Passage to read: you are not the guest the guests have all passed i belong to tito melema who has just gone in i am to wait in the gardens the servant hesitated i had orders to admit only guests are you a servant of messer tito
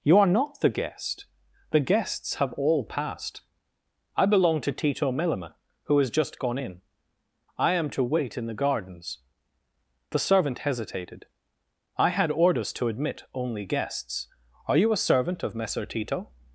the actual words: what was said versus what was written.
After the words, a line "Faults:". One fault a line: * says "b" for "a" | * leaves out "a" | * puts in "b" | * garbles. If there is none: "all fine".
you are not the guest the guests have all passed i belong to tito melema who has just gone in i am to wait in the gardens the servant hesitated i had orders to admit only guests are you a servant of messer tito
Faults:
all fine